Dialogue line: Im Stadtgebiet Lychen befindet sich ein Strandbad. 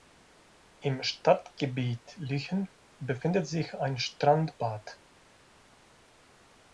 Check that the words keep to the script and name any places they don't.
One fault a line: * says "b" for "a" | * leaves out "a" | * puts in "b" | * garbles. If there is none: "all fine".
all fine